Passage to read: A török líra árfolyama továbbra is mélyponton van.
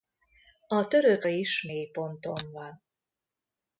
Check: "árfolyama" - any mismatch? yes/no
yes